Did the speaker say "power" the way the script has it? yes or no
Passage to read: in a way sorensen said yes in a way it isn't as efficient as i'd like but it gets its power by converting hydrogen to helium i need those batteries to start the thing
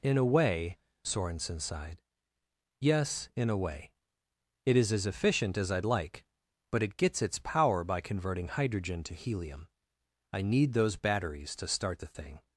yes